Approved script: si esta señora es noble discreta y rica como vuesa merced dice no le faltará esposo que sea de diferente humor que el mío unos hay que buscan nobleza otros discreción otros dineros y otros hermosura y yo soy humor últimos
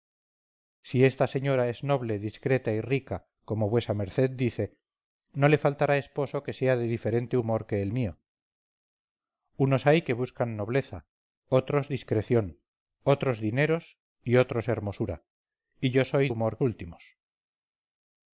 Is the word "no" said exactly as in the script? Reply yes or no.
yes